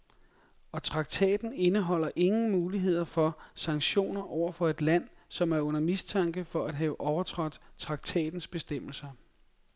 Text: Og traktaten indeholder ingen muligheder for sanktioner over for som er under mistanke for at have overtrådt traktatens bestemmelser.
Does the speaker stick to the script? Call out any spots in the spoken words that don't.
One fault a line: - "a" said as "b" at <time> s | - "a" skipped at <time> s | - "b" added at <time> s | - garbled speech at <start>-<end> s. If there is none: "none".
- "et land" added at 4.7 s